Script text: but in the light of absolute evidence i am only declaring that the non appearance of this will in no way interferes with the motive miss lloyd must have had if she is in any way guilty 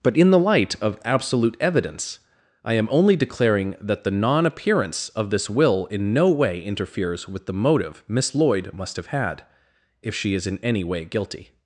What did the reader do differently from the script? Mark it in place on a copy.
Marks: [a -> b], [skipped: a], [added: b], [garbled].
but in the light of absolute evidence i am only declaring that the non appearance of this will in no way interferes with the motive miss lloyd must have had if she is in any way guilty